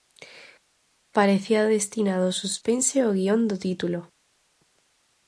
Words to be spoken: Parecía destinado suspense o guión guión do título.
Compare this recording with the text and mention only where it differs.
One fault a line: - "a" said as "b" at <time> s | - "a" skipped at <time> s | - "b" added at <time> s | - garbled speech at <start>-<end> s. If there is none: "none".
- "ao" added at 2.3 s
- "guión" skipped at 3.4 s